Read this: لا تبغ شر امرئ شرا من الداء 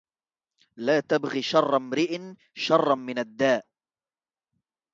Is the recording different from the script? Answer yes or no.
no